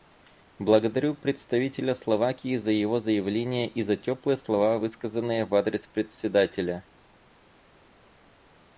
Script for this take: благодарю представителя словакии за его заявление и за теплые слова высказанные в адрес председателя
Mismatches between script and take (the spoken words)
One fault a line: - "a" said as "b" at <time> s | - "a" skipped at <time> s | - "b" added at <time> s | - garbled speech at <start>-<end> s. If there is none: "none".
none